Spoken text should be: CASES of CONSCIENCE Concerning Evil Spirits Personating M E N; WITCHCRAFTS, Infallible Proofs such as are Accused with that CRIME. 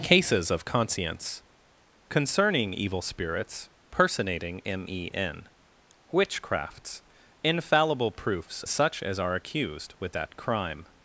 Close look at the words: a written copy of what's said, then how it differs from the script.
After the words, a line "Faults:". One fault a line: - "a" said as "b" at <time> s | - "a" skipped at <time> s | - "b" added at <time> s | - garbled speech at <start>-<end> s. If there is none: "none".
CASES of CONSCIENCE Concerning Evil Spirits Personating M E N; WITCHCRAFTS, Infallible Proofs such as are Accused with that CRIME.
Faults:
none